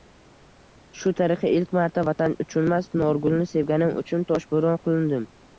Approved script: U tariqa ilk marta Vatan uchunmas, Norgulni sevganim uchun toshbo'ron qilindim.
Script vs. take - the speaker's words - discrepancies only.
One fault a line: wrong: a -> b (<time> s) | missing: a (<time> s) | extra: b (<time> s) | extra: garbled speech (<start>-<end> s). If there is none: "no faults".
wrong: U -> Shu (1.0 s)